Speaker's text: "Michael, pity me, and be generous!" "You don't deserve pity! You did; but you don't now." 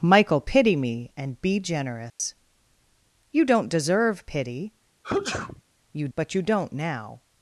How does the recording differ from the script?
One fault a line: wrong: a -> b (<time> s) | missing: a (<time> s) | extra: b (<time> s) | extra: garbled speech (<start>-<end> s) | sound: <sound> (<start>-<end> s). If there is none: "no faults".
sound: dropout (2.1-2.2 s)
sound: sneeze (5.0-5.6 s)
missing: did (6.1 s)